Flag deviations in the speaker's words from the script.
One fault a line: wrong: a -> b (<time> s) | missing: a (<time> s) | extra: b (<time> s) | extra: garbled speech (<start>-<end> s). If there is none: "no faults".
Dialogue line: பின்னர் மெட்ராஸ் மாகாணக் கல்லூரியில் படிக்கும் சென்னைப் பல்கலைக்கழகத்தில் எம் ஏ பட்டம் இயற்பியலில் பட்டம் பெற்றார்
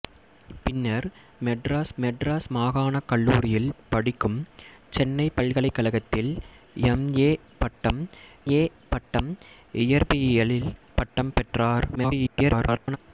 extra: மெட்ராஸ் (2.0 s)
extra: ஏ பட்டம் (8.5 s)
extra: garbled speech (11.9-13.0 s)